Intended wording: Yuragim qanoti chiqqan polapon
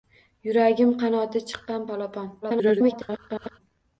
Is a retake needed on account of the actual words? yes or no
yes